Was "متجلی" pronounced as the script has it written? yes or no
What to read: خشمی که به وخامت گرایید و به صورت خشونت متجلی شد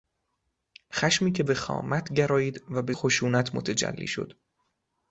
yes